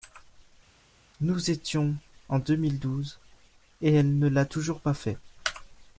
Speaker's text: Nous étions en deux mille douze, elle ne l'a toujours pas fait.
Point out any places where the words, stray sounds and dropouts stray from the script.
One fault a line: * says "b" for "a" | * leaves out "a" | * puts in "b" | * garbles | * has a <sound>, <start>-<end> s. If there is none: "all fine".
* puts in "et"